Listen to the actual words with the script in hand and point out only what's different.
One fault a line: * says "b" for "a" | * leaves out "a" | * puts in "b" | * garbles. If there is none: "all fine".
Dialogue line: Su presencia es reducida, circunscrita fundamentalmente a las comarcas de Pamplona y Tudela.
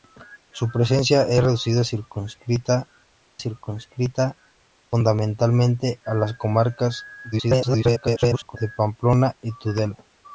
* puts in "circunscrita"
* garbles